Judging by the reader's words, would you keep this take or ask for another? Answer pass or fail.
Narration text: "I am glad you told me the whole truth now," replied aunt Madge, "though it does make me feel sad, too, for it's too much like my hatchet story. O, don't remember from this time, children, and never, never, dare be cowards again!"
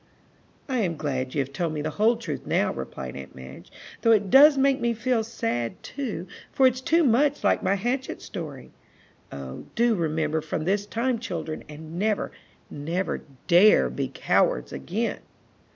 fail